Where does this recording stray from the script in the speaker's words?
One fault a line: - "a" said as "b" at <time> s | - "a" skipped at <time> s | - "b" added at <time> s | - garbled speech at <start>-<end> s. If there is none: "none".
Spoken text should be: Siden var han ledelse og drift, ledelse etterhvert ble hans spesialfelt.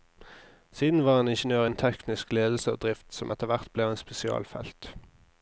- "ingeniør innen teknisk" added at 1.3 s
- "ledelse" said as "som" at 3.1 s